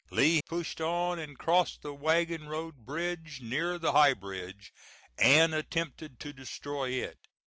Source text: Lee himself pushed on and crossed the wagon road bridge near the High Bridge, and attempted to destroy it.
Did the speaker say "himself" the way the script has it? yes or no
no